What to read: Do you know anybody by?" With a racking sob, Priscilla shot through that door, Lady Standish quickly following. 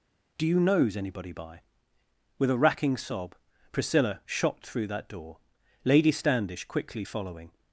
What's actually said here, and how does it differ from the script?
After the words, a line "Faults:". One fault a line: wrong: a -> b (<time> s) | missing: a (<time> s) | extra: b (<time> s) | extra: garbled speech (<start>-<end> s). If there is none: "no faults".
Do you knows anybody by?" With a racking sob, Priscilla shot through that door, Lady Standish quickly following.
Faults:
wrong: know -> knows (0.6 s)